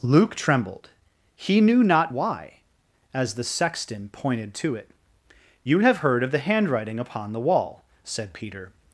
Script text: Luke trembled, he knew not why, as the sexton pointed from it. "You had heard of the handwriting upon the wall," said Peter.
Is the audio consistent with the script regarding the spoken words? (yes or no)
no